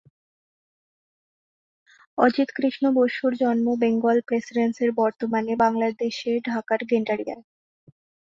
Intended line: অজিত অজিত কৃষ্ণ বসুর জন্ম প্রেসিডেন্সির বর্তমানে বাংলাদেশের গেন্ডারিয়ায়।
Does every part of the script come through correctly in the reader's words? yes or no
no